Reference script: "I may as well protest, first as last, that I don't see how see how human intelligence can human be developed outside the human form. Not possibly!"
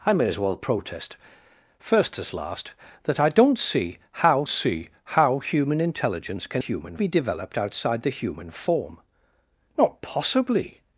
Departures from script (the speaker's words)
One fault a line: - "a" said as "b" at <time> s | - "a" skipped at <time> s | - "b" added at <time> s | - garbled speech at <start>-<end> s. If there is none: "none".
none